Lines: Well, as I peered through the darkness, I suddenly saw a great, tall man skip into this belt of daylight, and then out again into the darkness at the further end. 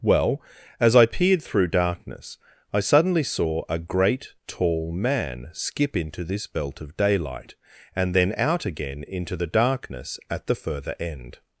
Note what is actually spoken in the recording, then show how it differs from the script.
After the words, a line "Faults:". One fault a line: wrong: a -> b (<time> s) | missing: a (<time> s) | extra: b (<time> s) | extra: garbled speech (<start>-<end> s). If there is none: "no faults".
Well, as I peered through darkness, I suddenly saw a great, tall man skip into this belt of daylight, and then out again into the darkness at the further end.
Faults:
missing: the (1.7 s)